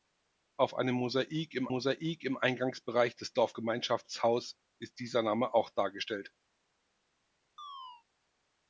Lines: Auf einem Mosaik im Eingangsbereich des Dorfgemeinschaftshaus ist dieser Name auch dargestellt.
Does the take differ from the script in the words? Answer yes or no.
yes